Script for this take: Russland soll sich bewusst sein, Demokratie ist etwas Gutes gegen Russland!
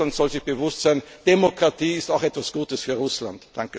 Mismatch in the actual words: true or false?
true